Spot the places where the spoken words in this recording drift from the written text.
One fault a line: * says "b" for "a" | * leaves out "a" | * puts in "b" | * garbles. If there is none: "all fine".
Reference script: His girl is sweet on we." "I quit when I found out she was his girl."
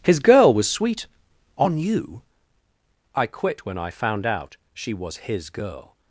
* says "was" for "is"
* says "you" for "we"